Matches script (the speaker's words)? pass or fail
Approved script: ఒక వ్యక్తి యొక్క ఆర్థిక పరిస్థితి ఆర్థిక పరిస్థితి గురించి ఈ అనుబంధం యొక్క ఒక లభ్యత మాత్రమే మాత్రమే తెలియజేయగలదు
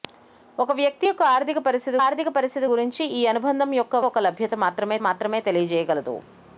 pass